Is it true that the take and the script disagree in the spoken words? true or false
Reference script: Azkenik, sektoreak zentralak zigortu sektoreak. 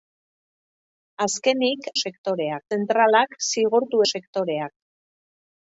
false